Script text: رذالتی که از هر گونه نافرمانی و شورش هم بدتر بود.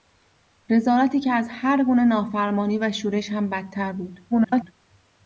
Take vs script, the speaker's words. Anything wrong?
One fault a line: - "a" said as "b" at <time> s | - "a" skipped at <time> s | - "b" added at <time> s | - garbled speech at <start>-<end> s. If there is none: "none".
- garbled speech at 4.3-4.7 s